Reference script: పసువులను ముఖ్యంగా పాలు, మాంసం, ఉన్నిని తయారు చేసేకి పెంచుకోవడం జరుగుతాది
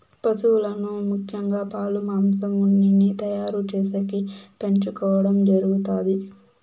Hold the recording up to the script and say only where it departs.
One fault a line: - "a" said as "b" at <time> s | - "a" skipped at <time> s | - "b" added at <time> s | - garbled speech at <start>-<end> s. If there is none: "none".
none